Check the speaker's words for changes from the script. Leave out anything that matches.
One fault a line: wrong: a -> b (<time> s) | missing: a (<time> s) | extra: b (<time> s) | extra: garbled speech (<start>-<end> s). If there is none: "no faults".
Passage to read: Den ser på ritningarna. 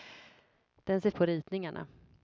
no faults